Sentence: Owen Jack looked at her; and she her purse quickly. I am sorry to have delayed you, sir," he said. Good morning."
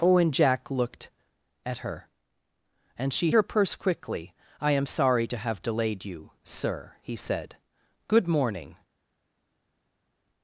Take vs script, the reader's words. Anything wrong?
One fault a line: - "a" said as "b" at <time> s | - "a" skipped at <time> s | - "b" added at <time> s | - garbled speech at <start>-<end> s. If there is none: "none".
none